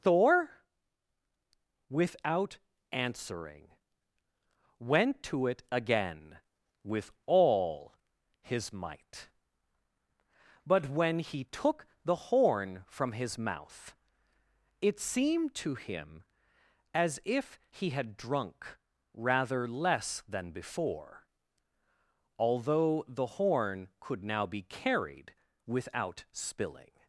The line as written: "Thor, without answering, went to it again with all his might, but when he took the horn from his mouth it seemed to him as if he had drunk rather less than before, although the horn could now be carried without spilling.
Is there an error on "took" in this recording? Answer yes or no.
no